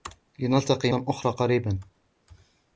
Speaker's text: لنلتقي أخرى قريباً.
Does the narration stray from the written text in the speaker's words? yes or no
no